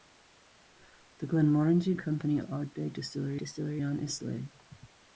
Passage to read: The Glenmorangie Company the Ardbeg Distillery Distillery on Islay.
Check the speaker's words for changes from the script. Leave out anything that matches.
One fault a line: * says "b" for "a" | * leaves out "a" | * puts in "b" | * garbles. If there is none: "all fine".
all fine